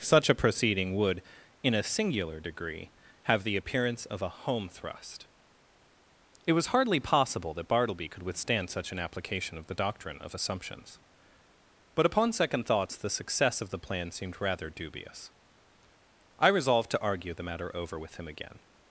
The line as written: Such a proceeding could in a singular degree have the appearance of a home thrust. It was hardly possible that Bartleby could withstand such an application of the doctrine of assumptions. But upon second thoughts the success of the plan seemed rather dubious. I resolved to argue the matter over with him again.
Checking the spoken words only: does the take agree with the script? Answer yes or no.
no